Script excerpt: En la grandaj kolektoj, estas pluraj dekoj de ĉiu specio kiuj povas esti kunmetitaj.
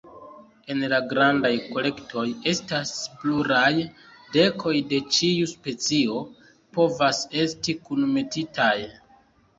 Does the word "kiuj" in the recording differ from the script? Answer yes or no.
yes